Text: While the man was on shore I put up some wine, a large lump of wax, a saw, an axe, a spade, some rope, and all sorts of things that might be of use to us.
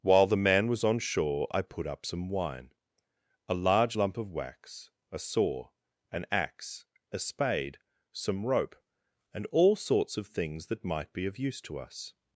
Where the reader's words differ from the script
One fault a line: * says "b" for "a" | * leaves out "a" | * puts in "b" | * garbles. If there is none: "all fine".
all fine